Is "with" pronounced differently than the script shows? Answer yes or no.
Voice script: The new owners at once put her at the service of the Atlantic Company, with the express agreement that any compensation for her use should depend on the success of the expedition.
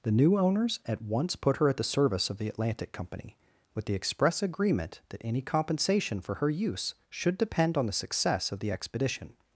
no